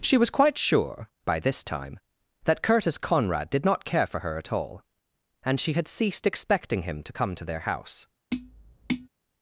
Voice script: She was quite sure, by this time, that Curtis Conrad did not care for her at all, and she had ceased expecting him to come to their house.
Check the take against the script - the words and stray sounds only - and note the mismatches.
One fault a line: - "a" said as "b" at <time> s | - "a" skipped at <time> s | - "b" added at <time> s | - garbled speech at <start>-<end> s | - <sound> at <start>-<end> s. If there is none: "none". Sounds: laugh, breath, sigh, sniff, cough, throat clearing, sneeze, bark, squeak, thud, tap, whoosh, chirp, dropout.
- tap at 8.3-9.1 s